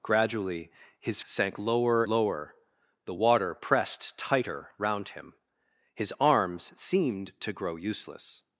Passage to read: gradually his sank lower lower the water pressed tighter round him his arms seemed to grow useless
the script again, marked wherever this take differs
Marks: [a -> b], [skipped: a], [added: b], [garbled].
gradually his sank lower lower the water pressed tighter round him his arms seemed to grow useless